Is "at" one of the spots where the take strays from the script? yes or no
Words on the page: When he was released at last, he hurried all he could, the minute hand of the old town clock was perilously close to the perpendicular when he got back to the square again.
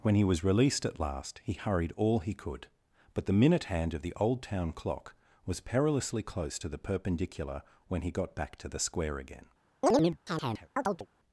no